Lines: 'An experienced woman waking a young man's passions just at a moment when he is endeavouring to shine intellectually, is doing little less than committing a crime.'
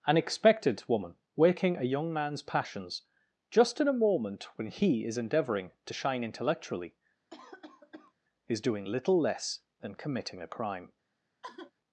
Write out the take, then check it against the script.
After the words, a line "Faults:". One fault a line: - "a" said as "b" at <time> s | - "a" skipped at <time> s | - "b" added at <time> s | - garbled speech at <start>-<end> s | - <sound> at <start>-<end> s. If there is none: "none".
'An expected woman waking a young man's passions just in a moment when he is endeavouring to shine intellectually, is doing little less than committing a crime.'
Faults:
- "experienced" said as "expected" at 0.2 s
- "at" said as "in" at 3.8 s
- cough at 7.3-8.1 s
- sigh at 11.4-11.7 s